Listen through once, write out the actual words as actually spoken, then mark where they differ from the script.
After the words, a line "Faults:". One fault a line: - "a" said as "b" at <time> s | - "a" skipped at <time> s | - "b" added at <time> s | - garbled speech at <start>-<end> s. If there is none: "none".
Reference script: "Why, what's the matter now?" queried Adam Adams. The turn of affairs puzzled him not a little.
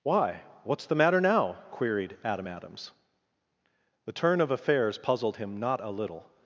"Why, what's the matter now?" queried Adam Adams. The turn of affairs puzzled him not a little.
Faults:
none